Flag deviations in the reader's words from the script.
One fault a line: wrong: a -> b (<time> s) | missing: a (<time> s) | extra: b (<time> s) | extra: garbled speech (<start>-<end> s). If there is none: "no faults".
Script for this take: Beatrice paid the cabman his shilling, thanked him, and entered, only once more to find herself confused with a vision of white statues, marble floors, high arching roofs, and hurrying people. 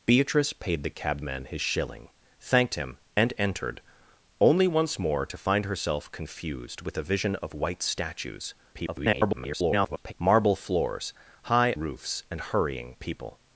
extra: garbled speech (8.7-10.1 s)
missing: arching (11.7 s)